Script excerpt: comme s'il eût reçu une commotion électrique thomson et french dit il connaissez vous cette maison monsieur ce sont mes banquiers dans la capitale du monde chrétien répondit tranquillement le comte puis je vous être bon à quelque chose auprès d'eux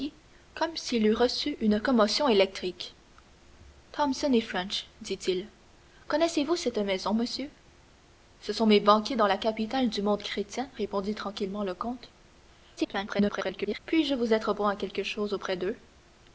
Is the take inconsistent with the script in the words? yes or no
yes